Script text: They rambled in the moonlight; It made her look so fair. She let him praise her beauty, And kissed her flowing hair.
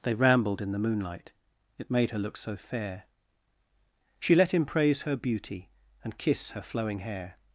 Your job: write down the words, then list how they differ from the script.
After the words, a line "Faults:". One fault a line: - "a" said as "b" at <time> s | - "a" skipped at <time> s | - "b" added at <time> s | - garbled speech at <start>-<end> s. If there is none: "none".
They rambled in the moonlight; It made her look so fair. She let him praise her beauty, And kiss her flowing hair.
Faults:
- "kissed" said as "kiss" at 6.2 s